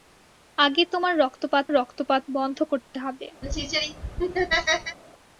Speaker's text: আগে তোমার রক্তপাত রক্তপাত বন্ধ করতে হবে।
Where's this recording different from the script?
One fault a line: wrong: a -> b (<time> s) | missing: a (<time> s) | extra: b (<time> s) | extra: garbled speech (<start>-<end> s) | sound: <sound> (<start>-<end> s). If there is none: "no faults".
sound: laugh (3.4-5.0 s)